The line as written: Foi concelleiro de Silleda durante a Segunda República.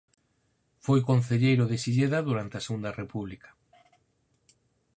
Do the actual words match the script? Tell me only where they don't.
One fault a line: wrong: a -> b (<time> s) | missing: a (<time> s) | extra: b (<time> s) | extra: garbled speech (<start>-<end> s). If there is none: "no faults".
no faults